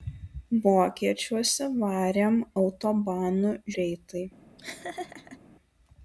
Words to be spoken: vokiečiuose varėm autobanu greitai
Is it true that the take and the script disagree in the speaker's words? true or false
false